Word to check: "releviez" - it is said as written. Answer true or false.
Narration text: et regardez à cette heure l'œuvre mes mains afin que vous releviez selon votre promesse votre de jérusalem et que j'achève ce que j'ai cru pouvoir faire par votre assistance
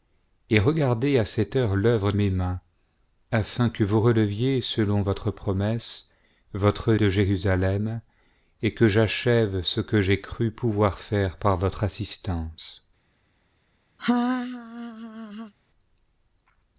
true